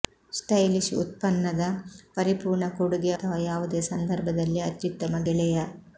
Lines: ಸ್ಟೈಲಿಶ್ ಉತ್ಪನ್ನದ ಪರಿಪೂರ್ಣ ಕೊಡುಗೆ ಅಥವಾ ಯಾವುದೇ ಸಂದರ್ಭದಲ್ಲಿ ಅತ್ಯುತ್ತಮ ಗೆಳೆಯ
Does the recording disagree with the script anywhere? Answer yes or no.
no